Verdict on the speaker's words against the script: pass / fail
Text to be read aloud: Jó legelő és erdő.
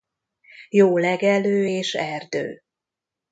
pass